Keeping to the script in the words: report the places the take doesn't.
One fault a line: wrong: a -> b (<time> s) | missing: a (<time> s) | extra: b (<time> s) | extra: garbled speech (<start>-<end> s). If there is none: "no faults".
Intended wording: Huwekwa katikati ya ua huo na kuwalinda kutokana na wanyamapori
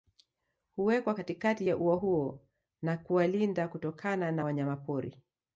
no faults